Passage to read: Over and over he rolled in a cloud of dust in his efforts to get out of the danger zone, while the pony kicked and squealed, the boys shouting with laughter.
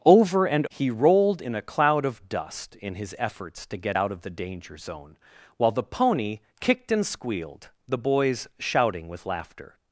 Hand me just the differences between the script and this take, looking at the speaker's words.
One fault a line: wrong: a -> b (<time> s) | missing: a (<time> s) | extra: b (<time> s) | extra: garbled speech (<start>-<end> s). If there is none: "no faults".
missing: over (0.7 s)